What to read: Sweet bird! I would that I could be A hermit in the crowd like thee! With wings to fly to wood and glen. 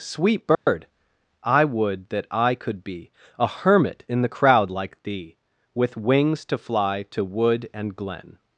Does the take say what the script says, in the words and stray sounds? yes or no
no